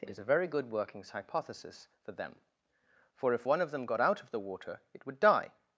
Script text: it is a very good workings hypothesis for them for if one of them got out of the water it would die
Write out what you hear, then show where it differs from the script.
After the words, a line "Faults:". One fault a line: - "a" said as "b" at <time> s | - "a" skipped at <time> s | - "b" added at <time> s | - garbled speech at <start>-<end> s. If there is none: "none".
it is a very good workings hypothesis for them for if one of them got out of the water it would die
Faults:
none